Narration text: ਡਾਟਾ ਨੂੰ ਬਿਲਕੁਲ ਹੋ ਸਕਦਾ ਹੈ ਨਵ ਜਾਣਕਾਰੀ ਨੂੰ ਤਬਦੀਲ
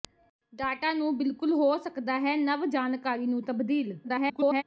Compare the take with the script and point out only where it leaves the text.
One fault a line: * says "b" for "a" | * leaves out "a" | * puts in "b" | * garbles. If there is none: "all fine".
* garbles